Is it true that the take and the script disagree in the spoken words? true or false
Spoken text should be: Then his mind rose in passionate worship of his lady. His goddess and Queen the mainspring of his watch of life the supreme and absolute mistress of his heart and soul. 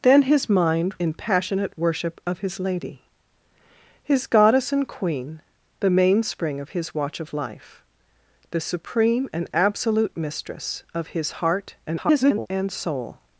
true